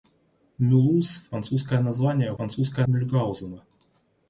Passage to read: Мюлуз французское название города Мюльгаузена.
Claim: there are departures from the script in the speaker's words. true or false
true